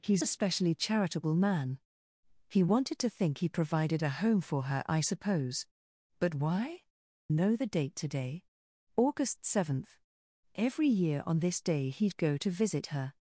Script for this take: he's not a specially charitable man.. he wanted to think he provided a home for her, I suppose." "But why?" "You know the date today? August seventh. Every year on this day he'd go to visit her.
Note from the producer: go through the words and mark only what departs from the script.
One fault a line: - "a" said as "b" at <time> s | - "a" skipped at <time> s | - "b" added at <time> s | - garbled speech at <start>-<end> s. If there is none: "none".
- "not" skipped at 0.2 s
- "You" skipped at 6.9 s